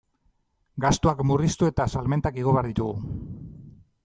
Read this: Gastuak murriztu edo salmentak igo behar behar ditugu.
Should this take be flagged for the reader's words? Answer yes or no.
yes